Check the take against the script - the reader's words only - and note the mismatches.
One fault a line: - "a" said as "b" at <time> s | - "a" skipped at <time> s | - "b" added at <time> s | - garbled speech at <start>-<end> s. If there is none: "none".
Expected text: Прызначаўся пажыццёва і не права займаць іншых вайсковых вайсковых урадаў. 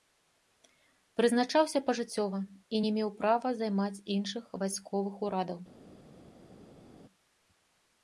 - "меў" added at 3.0 s
- "вайсковых" skipped at 5.1 s